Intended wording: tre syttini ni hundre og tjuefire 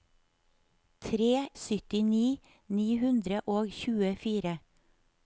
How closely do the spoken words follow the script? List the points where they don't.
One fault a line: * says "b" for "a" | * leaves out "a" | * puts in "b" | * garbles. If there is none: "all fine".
all fine